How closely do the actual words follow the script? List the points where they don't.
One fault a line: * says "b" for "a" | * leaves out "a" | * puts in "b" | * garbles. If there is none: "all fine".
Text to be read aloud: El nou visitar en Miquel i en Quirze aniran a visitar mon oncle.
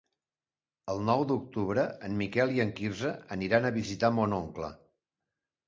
* says "d'octubre" for "visitar"